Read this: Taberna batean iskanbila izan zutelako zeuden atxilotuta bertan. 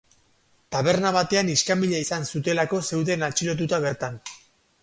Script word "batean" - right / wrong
right